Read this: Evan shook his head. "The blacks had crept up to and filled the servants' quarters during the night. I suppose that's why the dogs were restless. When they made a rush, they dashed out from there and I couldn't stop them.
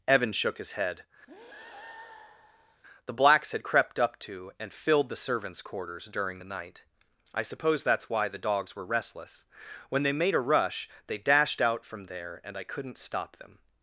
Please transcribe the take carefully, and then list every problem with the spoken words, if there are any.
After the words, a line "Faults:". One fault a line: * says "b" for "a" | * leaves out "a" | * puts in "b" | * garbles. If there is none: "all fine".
Evan shook his head. "The blacks had crept up to and filled the servants' quarters during the night. I suppose that's why the dogs were restless. When they made a rush, they dashed out from there and I couldn't stop them.
Faults:
all fine